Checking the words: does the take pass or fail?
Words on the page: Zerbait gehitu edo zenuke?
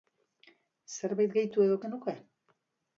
pass